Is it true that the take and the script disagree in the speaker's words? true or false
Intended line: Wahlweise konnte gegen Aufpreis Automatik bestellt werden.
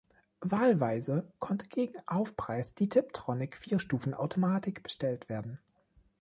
true